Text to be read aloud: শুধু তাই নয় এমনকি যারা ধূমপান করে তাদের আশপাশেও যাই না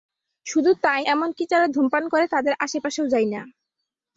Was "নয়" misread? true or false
true